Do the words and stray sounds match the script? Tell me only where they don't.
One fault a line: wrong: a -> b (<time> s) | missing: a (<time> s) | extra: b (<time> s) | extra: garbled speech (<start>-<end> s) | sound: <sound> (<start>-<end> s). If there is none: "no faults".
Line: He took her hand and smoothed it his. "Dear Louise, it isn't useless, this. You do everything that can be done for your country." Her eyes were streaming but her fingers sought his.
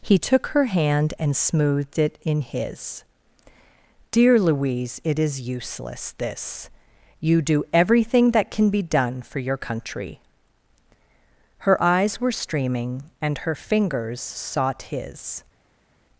extra: in (2.2 s)
wrong: isn't -> is (5.2 s)
wrong: but -> and (13.2 s)